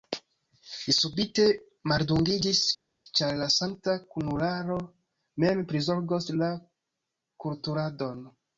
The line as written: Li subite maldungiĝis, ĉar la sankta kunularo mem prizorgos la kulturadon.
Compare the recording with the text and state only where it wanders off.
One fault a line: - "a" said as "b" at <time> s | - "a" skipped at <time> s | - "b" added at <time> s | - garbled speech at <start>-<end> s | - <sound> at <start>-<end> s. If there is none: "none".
none